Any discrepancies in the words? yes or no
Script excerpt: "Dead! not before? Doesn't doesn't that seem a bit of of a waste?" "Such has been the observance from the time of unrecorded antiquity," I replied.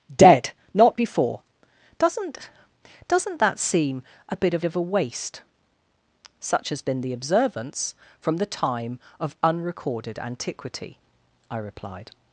no